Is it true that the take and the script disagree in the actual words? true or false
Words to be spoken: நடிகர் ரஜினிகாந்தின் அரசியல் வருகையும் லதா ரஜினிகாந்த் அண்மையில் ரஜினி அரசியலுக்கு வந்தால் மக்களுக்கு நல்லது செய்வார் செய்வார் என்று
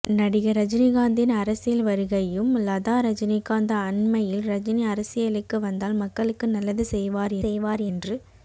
false